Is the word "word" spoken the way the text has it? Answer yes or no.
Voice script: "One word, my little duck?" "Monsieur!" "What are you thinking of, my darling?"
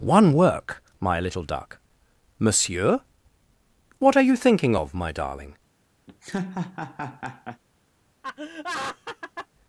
no